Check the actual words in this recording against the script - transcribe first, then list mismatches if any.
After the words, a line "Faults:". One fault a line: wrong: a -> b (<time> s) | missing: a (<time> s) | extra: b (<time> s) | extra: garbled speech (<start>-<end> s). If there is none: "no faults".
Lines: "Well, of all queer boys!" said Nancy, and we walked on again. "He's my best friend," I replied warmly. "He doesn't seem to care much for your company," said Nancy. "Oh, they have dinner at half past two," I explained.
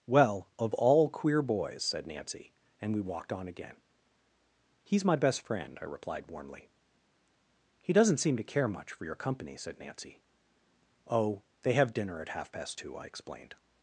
"Well, of all queer boys!" said Nancy, and we walked on again. "He's my best friend," I replied warmly. "He doesn't seem to care much for your company," said Nancy. "Oh, they have dinner at half past two," I explained.
Faults:
no faults